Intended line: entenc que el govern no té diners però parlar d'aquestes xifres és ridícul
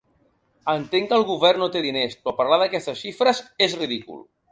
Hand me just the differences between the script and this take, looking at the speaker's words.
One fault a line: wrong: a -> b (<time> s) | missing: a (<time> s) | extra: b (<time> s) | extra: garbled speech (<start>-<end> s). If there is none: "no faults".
no faults